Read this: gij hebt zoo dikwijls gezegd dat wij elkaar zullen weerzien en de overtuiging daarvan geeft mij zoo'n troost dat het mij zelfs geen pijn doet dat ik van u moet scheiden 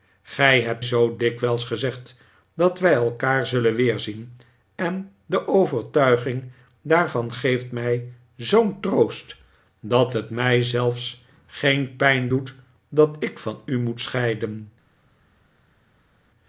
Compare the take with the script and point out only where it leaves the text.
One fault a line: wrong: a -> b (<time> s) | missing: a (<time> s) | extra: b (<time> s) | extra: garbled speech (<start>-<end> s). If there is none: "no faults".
no faults